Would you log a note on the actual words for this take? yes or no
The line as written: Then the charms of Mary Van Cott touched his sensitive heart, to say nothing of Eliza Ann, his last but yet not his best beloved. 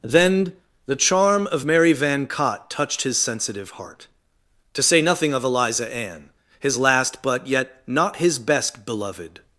yes